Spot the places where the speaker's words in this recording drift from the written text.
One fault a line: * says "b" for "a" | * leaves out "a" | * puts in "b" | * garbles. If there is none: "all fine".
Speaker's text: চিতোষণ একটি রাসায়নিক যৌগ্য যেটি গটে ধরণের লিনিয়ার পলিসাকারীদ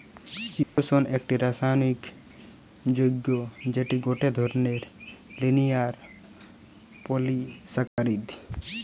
all fine